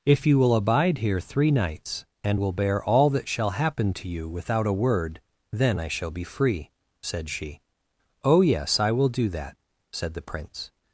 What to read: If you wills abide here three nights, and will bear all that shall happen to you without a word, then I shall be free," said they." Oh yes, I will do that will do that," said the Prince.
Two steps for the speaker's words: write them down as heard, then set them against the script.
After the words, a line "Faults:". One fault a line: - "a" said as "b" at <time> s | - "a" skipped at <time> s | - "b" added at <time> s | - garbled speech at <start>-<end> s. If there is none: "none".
If you will abide here three nights, and will bear all that shall happen to you without a word, then I shall be free," said she." Oh yes, I will do that," said the Prince.
Faults:
- "wills" said as "will" at 0.4 s
- "they" said as "she" at 7.3 s
- "will do that" skipped at 9.6 s